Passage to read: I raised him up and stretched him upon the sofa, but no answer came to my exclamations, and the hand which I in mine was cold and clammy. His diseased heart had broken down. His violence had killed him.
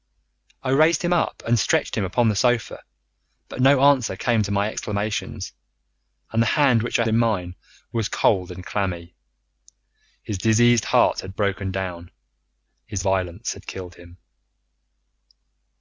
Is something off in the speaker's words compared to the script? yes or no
no